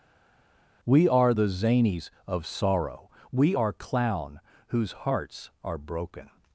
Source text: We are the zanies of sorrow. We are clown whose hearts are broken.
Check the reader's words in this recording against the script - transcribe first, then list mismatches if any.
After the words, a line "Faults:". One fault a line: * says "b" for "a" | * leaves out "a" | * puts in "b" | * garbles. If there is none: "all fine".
We are the zanies of sorrow. We are clown whose hearts are broken.
Faults:
all fine